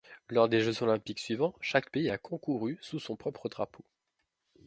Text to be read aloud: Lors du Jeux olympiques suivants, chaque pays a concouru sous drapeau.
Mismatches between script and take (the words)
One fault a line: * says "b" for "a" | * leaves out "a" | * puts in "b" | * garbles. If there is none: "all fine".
* says "des" for "du"
* puts in "son propre"